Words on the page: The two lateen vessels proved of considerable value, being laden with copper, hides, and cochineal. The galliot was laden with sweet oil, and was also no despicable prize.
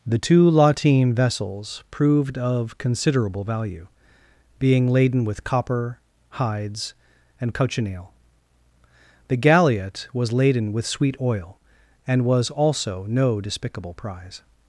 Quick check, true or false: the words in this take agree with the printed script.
true